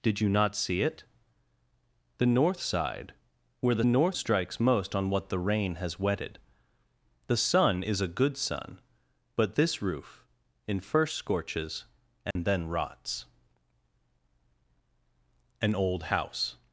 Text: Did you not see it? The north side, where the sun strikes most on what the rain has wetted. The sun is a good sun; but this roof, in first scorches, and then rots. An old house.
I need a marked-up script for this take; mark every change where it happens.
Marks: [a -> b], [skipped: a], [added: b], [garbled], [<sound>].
Did you not see it? The north side, where the [sun -> north] strikes most on what the rain has wetted. The sun is a good sun; but this roof, in first scorches, and [dropout] then rots. An old house.